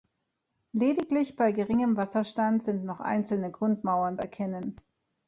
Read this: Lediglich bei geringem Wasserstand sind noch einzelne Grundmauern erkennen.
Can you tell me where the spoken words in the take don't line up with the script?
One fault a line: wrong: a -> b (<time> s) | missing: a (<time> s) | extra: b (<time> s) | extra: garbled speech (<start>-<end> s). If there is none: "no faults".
no faults